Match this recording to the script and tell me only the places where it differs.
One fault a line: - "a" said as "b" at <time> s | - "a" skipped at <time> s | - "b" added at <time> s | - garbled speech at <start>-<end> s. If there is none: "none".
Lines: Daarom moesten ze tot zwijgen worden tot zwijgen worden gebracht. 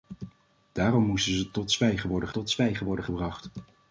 none